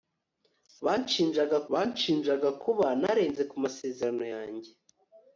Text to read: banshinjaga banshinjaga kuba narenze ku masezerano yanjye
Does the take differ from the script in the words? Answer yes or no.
no